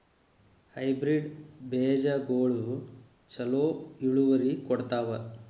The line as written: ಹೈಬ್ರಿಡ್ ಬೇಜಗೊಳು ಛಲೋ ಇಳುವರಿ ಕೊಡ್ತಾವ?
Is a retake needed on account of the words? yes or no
no